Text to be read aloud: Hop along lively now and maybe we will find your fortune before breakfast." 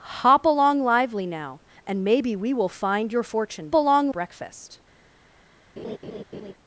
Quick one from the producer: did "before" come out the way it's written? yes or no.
no